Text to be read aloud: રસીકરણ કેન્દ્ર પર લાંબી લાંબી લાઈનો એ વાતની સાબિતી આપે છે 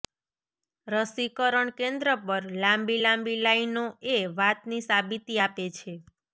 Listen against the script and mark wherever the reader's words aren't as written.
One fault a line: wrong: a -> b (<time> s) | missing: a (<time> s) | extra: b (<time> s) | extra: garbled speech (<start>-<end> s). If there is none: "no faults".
no faults